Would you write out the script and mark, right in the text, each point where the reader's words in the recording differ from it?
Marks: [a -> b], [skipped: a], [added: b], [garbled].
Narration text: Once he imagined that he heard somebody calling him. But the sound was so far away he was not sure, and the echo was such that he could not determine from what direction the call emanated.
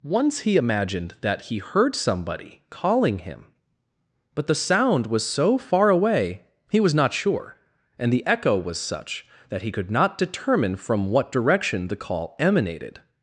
Once he imagined that he heard somebody calling him. But the sound was so far away he was not sure, and the echo was such that he could not determine from what direction the call emanated.